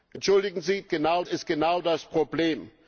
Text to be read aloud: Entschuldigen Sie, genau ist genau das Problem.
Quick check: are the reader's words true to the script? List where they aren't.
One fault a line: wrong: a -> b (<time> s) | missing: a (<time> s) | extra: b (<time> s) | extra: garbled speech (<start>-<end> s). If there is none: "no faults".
no faults